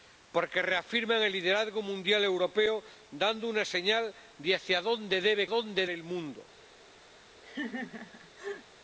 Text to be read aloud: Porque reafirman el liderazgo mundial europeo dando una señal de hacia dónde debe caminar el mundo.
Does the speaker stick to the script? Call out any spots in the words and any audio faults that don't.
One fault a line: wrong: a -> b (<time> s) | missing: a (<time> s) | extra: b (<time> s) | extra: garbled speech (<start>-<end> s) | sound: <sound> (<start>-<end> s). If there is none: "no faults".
wrong: caminar -> dónde (5.5 s)
sound: laugh (7.4-8.7 s)